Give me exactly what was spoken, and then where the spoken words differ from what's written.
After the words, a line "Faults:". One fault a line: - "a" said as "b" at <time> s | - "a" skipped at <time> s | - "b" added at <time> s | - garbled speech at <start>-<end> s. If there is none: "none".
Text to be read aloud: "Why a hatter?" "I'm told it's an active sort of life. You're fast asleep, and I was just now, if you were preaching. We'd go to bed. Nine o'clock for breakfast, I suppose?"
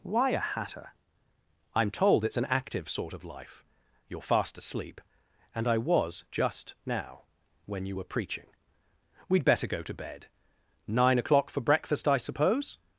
"Why a hatter?" "I'm told it's an active sort of life. You're fast asleep, and I was just now, when you were preaching. We'd better go to bed. Nine o'clock for breakfast, I suppose?"
Faults:
- "if" said as "when" at 7.7 s
- "better" added at 9.4 s